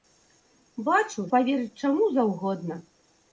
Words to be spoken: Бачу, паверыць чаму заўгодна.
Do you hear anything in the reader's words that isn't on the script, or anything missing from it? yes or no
no